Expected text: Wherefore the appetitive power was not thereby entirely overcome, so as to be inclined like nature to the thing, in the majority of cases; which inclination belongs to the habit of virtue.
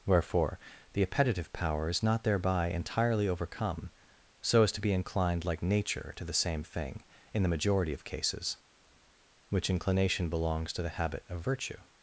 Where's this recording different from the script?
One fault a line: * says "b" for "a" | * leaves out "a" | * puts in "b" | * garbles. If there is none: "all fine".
* says "is" for "was"
* puts in "same"